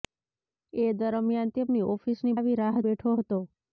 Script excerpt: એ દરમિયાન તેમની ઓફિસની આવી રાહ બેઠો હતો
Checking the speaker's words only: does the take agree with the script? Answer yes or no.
yes